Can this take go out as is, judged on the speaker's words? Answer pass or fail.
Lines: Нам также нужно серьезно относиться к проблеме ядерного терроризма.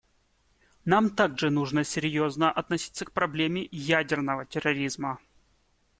pass